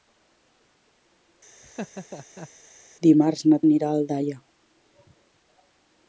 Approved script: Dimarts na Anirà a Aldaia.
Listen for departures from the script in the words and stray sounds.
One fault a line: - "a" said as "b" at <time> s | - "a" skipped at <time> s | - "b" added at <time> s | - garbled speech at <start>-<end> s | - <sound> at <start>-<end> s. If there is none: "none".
- laugh at 1.6-2.5 s